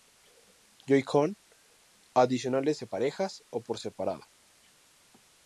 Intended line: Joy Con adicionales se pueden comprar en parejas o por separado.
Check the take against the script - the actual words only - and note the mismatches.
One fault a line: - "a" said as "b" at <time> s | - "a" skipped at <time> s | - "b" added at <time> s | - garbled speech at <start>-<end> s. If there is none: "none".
- "pueden comprar en" skipped at 2.9 s